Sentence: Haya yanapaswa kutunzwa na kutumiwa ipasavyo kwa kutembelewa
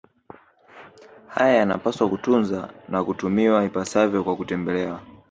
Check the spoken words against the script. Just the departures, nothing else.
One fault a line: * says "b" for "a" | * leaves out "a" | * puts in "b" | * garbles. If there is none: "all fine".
all fine